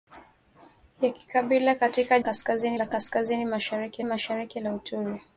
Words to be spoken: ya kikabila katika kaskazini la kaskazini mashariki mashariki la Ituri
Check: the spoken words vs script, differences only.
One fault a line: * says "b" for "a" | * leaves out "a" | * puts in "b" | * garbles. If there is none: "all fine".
all fine